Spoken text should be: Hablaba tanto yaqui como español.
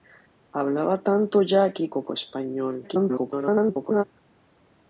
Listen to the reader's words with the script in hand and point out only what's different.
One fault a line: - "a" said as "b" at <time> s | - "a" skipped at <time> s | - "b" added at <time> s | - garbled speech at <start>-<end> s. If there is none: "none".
- garbled speech at 2.8-4.0 s